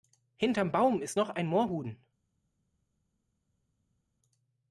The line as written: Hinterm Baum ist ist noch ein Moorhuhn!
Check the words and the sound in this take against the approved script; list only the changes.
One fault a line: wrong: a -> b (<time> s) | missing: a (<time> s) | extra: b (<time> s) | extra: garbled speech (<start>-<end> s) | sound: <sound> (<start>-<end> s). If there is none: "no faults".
missing: ist (1.2 s)